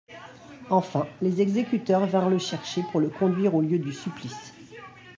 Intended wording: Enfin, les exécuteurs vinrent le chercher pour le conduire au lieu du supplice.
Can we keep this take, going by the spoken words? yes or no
yes